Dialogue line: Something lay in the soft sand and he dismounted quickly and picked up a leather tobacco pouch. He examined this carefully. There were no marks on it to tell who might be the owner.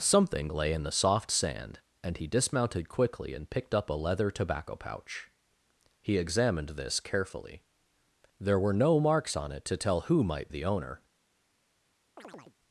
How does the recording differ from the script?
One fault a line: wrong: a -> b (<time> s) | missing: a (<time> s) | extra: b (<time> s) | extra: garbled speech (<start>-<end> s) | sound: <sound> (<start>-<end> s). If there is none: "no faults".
missing: be (10.5 s)
sound: chirp (12.2-12.6 s)